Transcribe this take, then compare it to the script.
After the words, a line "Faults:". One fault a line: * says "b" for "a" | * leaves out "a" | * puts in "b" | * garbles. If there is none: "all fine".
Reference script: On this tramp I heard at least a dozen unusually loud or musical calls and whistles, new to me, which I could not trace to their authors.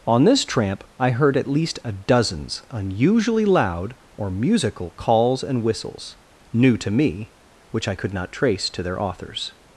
On this tramp I heard at least a dozens unusually loud or musical calls and whistles, new to me, which I could not trace to their authors.
Faults:
* says "dozens" for "dozen"